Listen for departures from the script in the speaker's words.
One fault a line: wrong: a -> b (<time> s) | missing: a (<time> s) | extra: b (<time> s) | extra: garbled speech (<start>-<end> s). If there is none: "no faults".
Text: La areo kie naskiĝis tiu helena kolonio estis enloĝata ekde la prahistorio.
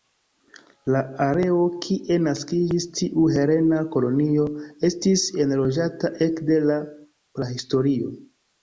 no faults